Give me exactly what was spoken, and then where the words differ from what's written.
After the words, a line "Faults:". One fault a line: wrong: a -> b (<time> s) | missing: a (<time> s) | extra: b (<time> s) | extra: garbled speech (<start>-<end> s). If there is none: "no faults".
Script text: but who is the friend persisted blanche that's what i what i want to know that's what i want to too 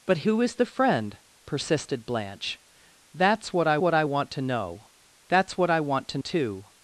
but who is the friend persisted blanche that's what i what i want to know that's what i want to too
Faults:
no faults